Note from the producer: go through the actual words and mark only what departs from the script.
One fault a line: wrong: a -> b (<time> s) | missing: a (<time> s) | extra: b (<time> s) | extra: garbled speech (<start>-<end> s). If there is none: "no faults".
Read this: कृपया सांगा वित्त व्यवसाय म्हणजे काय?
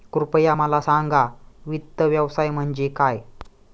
extra: मला (0.5 s)